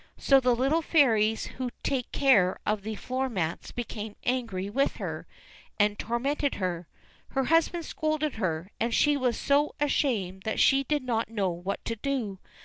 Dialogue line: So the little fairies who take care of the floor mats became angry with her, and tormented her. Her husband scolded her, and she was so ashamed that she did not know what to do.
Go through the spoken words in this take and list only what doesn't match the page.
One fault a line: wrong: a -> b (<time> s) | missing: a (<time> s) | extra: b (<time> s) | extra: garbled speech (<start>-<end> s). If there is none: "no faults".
no faults